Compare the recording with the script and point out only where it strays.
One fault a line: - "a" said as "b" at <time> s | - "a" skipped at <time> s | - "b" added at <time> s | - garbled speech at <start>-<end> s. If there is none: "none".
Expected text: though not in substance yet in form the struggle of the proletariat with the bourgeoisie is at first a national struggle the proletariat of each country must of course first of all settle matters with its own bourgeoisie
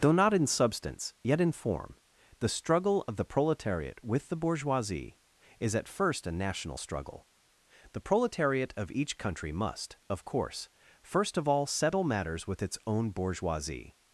none